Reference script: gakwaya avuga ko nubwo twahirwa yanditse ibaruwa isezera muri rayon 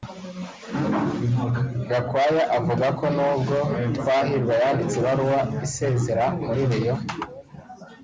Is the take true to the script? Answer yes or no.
yes